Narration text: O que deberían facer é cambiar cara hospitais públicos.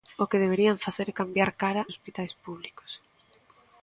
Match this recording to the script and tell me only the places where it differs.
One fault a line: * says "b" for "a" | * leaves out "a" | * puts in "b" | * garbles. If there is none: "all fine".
all fine